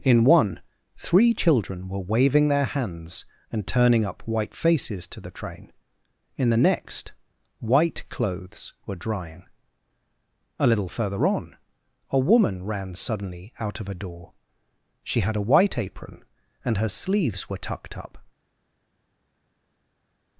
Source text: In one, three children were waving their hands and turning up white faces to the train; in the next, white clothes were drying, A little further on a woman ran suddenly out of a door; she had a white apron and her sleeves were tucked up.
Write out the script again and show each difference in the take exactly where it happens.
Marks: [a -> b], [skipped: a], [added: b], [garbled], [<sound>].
In one, three children were waving their hands and turning up white faces to the train; in the next, white clothes were drying, A little further on a woman ran suddenly out of a door; she had a white apron and her sleeves were tucked up.